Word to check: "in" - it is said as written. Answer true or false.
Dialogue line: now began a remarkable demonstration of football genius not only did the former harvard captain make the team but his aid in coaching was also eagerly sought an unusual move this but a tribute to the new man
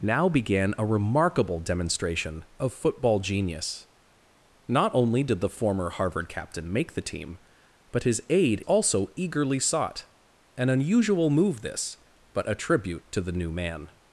false